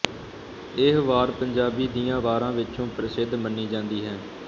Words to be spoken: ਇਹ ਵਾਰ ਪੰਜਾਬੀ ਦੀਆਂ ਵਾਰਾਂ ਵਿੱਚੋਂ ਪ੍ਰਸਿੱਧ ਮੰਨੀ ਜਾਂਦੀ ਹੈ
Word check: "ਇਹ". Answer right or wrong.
right